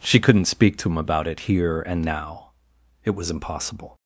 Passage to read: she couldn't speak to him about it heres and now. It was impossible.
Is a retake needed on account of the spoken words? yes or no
yes